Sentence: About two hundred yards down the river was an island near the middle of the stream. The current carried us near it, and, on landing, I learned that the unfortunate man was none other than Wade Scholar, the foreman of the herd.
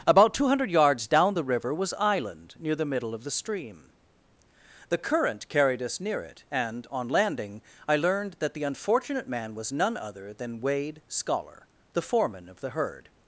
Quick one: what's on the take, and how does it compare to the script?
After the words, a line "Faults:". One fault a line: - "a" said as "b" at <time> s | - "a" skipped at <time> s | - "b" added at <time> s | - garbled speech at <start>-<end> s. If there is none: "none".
About two hundred yards down the river was island near the middle of the stream. The current carried us near it, and, on landing, I learned that the unfortunate man was none other than Wade Scholar, the foreman of the herd.
Faults:
- "an" skipped at 1.9 s